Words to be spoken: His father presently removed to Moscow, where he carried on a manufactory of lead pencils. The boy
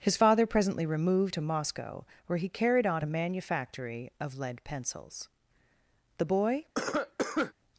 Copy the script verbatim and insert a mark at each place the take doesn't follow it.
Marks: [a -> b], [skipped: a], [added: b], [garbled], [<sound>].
His father presently removed to Moscow, where he carried on a manufactory of lead pencils. The boy [cough]